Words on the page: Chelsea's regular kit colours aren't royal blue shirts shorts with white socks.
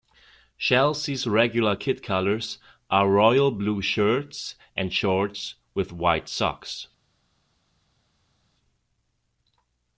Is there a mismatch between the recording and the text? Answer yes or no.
yes